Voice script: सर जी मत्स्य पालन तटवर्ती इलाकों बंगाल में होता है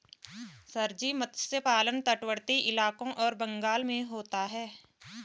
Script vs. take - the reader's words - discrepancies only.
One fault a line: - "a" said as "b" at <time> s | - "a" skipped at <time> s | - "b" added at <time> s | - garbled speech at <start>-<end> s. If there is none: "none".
- "और" added at 3.2 s